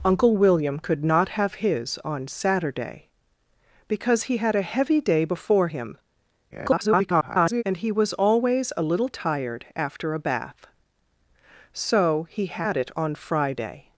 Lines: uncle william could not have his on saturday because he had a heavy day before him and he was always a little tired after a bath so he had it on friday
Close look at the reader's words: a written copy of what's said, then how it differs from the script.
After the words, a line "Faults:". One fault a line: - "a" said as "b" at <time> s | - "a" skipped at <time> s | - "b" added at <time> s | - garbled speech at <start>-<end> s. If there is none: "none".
uncle william could not have his on saturday because he had a heavy day before him [garbled] and he was always a little tired after a bath so he had it on friday
Faults:
- garbled speech at 6.5-7.6 s